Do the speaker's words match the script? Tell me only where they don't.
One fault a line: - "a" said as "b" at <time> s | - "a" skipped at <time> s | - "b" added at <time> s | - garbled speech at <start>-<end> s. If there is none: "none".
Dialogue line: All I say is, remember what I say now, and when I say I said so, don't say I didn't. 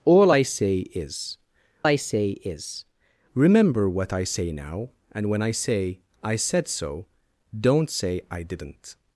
- "I say is" added at 1.8 s